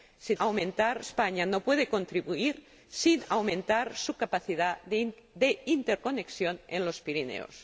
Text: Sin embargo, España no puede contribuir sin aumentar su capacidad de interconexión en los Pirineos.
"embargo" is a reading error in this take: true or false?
true